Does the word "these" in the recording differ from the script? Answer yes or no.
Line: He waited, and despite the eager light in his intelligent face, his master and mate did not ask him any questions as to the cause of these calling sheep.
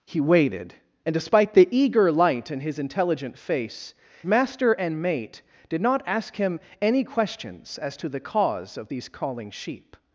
no